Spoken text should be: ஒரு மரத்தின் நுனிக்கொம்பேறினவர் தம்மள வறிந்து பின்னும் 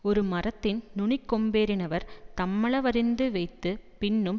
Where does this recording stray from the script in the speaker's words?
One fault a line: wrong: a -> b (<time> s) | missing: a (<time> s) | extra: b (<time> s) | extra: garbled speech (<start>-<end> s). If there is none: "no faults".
extra: வைத்து (3.3 s)